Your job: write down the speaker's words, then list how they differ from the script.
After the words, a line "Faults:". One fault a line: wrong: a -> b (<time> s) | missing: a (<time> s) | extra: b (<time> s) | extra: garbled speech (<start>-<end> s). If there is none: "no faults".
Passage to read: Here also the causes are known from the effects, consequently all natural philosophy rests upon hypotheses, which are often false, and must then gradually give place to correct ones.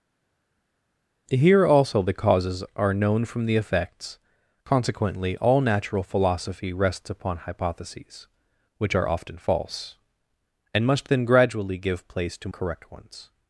Here also the causes are known from the effects, consequently all natural philosophy rests upon hypotheses, which are often false, and must then gradually give place to correct ones.
Faults:
no faults